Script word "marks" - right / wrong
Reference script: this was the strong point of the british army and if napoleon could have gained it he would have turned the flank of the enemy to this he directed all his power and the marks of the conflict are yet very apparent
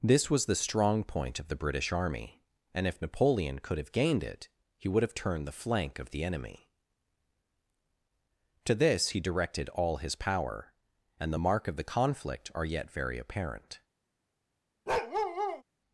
wrong